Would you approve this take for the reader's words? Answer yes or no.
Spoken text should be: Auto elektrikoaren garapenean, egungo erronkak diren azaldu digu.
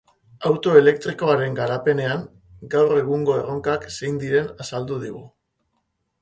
no